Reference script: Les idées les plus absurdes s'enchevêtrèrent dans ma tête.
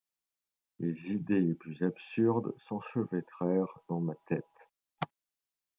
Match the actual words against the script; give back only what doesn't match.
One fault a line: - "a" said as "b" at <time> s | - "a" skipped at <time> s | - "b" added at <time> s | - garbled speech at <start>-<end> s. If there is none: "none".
none